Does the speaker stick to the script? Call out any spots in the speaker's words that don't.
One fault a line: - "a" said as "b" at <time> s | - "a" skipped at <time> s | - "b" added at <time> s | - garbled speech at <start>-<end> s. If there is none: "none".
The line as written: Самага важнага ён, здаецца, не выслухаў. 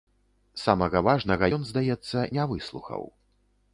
none